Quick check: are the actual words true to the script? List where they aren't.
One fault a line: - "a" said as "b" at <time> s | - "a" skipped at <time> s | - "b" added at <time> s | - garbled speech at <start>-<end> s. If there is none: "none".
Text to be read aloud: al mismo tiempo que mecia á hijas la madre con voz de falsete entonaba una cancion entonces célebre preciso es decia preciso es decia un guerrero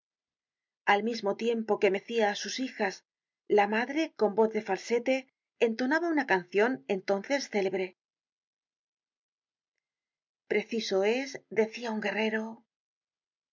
- "sus" added at 2.4 s
- "preciso es decia" skipped at 11.9 s